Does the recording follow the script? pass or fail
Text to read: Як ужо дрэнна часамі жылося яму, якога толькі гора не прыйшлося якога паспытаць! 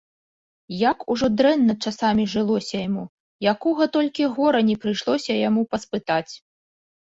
fail